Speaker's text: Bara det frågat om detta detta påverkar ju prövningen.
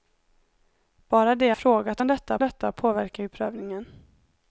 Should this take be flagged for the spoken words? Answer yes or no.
no